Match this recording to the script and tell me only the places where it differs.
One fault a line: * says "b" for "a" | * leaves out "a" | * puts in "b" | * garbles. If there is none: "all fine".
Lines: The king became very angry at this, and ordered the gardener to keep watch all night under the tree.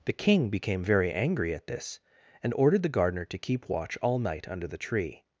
all fine